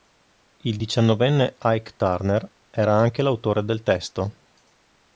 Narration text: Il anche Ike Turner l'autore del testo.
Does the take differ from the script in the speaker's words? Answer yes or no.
yes